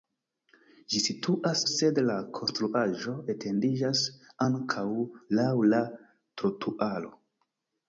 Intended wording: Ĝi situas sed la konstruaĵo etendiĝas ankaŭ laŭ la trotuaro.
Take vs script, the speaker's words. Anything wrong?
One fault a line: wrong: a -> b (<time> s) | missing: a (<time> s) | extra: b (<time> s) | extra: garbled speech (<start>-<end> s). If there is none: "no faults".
no faults